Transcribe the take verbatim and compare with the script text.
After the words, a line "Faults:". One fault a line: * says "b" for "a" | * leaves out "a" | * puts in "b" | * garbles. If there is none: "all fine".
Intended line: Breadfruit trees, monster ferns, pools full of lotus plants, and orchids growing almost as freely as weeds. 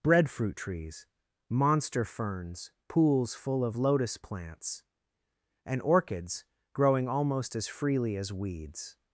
Breadfruit trees, monster ferns, pools full of lotus plants, and orchids growing almost as freely as weeds.
Faults:
all fine